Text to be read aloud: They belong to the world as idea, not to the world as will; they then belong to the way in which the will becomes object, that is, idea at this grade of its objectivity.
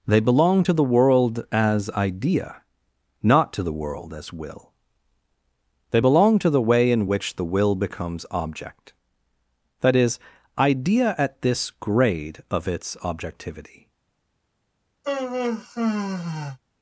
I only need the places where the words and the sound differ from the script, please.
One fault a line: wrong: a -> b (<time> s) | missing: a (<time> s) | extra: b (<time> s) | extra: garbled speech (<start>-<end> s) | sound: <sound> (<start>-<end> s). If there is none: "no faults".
missing: then (6.0 s)
sound: sigh (15.0-16.6 s)